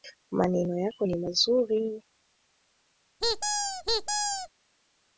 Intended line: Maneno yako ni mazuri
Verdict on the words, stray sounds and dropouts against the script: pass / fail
fail